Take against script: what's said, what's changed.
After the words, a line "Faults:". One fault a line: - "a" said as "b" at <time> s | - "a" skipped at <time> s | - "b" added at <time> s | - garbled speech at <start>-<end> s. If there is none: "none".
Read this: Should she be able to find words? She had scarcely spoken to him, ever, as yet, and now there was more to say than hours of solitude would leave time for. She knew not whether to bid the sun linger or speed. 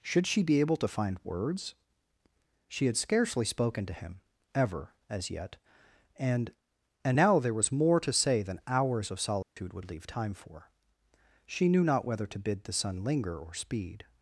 Should she be able to find words? She had scarcely spoken to him, ever, as yet, and and now there was more to say than hours of solitude would leave time for. She knew not whether to bid the sun linger or speed.
Faults:
- "and" added at 7.0 s